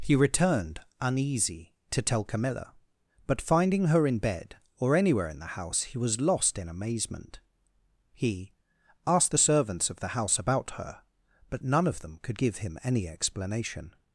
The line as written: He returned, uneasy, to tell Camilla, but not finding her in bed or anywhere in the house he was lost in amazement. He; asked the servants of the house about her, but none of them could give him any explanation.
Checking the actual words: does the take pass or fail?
fail